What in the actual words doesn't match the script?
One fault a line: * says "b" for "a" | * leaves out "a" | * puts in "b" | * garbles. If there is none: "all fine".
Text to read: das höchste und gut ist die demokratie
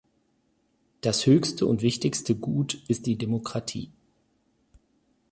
* puts in "wichtigste"